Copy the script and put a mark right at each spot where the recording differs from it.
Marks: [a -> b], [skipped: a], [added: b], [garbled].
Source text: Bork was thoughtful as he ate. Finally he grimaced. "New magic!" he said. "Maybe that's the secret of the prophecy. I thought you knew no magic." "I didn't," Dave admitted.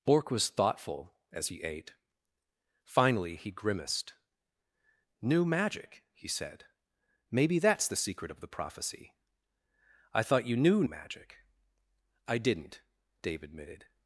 Bork was thoughtful as he ate. Finally he grimaced. "New magic!" he said. "Maybe that's the secret of the prophecy. I thought you knew [skipped: no] magic." "I didn't," Dave admitted.